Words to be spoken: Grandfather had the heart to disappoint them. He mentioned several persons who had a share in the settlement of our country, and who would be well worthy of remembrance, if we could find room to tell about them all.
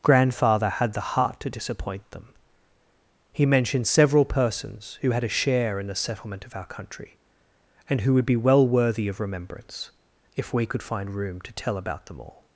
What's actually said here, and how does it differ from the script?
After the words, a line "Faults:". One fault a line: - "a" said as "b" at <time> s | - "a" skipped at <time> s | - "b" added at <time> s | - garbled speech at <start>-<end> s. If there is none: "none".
Grandfather had the heart to disappoint them. He mentioned several persons who had a share in the settlement of our country, and who would be well worthy of remembrance, if we could find room to tell about them all.
Faults:
none